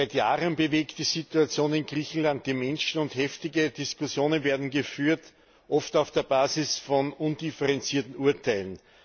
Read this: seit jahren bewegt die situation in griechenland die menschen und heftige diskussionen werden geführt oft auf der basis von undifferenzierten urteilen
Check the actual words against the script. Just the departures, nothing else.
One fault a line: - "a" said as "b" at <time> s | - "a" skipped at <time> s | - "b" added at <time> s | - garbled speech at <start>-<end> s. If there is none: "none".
none